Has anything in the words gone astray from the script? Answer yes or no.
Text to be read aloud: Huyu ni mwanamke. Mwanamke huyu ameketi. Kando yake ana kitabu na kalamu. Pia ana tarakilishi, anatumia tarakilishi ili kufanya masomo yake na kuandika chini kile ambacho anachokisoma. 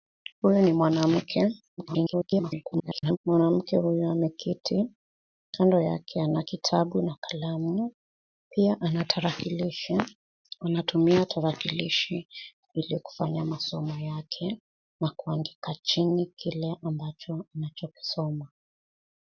yes